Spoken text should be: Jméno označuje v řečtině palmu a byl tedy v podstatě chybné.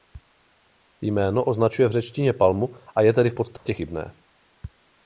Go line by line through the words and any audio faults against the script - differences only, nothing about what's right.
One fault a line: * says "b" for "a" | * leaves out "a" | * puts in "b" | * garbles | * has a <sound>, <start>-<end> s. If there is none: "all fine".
* says "je" for "byl"
* has a dropout, 3.6-3.7 s